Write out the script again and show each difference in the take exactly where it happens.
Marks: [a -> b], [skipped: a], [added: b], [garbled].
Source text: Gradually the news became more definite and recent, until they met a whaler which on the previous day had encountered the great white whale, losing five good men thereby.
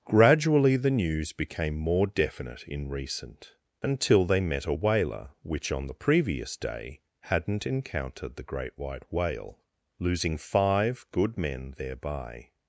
Gradually the news became more definite [and -> in] recent, until they met a whaler which on the previous day [had -> hadn't] encountered the great white whale, losing five good men thereby.